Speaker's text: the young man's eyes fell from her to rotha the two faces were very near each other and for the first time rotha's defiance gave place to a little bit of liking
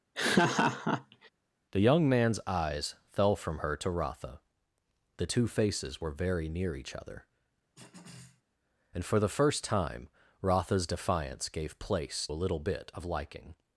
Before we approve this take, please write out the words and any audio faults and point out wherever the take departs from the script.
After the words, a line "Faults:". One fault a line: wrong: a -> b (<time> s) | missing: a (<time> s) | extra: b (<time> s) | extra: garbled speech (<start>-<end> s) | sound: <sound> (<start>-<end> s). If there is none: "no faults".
the young man's eyes fell from her to rotha the two faces were very near each other and for the first time rotha's defiance gave place a little bit of liking
Faults:
sound: laugh (0.1-1.3 s)
sound: throat clearing (7.7-8.4 s)
missing: to (12.3 s)